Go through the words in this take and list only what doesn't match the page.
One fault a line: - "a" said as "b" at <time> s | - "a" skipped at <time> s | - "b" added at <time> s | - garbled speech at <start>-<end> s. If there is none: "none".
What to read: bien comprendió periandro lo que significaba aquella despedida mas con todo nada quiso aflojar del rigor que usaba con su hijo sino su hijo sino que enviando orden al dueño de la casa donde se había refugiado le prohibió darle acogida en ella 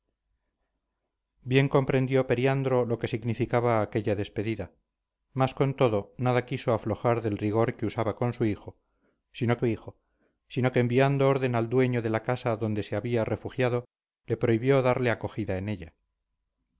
none